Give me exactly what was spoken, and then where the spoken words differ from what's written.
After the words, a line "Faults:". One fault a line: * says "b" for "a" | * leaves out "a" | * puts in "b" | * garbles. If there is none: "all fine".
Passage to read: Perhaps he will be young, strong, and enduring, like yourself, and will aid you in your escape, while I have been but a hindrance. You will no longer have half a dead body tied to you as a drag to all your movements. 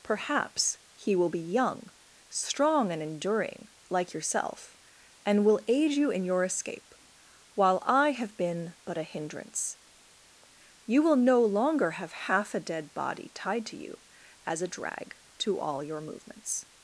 Perhaps he will be young, strong, and enduring, like yourself, and will aid you in your escape, while I have been but a hindrance. You will no longer have half a dead body tied to you as a drag to all your movements.
Faults:
all fine